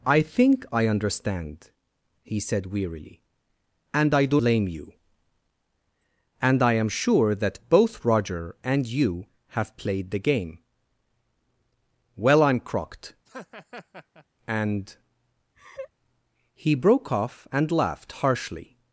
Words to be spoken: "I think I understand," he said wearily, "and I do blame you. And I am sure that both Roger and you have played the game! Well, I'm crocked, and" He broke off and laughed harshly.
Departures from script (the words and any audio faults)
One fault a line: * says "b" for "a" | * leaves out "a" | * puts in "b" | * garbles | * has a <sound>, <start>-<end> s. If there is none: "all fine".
* has a laugh, 13.2-14.2 s
* has a laugh, 15.5-15.9 s